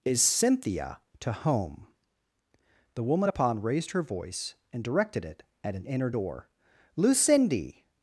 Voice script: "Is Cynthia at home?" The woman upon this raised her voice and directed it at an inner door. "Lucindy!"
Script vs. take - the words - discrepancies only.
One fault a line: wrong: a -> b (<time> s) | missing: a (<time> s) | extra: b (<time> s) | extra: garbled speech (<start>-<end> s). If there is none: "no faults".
wrong: at -> to (1.2 s)
missing: this (3.6 s)